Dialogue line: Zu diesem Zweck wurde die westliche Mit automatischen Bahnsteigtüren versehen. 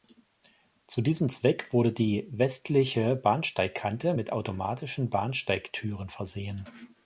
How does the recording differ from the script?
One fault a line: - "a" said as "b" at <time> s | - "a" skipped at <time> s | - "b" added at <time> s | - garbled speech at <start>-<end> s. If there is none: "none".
- "Bahnsteigkante" added at 3.1 s